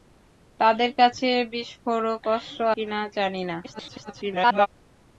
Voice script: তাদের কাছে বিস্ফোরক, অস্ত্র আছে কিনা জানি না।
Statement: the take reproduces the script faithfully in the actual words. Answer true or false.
false